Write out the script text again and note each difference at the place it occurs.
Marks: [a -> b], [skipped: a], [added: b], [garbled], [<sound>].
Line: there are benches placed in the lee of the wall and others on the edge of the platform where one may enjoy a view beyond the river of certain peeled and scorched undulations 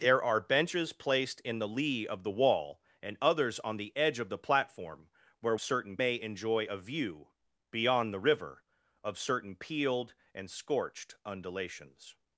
there are benches placed in the lee of the wall and others on the edge of the platform where [one -> certain] may enjoy a view beyond the river of certain peeled and scorched undulations